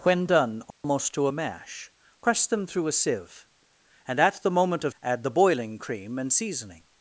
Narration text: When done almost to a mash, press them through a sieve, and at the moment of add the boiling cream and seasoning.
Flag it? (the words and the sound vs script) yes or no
yes